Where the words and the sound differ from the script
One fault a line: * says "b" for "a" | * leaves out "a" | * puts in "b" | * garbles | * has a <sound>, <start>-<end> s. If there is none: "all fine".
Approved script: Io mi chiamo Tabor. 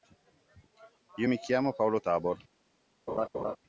* puts in "Paolo"
* has a laugh, 3.1-3.6 s